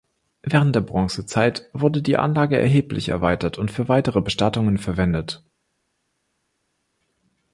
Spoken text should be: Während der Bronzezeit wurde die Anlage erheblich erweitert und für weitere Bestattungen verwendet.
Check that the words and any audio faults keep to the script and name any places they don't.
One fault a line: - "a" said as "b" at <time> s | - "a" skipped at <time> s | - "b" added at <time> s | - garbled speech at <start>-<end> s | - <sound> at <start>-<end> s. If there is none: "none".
none